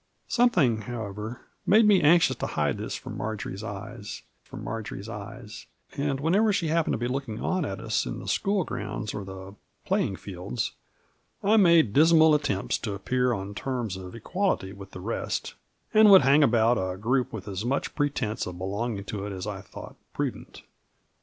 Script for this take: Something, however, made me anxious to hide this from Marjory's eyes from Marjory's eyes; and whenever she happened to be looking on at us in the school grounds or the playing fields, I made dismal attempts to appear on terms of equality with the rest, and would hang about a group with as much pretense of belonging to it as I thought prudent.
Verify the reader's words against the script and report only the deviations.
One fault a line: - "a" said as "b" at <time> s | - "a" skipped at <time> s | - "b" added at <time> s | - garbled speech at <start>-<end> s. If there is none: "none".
none